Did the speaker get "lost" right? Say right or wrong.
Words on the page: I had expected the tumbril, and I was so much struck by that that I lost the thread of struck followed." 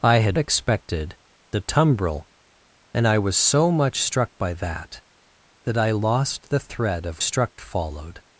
right